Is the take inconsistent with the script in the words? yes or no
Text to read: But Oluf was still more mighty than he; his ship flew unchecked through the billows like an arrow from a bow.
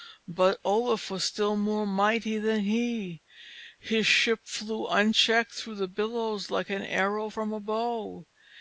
no